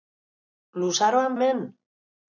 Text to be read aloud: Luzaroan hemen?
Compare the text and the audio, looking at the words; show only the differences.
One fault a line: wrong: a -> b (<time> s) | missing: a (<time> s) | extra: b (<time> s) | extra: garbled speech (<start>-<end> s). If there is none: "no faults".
no faults